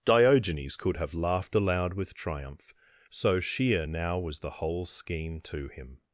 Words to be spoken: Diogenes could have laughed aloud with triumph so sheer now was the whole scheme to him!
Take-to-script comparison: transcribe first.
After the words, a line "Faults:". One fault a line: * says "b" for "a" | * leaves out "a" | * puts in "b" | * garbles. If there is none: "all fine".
Diogenes could have laughed aloud with triumph so sheer now was the whole scheme to him!
Faults:
all fine